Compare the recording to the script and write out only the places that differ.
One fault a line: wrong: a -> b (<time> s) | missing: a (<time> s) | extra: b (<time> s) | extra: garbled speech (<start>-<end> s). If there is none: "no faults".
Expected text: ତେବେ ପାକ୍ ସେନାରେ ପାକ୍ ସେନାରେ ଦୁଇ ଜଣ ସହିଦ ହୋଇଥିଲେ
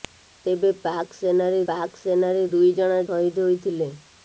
no faults